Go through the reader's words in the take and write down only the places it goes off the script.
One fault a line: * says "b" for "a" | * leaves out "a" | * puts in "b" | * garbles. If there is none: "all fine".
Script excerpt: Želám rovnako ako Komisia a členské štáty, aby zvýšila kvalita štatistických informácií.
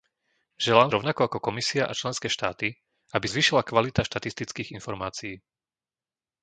all fine